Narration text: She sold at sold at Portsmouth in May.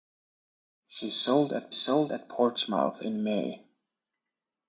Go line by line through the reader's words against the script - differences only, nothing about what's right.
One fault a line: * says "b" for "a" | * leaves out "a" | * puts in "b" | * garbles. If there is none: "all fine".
all fine